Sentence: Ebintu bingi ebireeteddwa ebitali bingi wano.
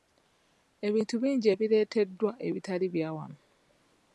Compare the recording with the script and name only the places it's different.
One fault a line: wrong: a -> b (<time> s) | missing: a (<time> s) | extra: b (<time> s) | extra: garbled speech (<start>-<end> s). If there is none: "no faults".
wrong: bingi -> bya (2.9 s)